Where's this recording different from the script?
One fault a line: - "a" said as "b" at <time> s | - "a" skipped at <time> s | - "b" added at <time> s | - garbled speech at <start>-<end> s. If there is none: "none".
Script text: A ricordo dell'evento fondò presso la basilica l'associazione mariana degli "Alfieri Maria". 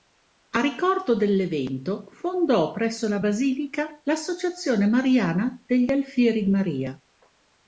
none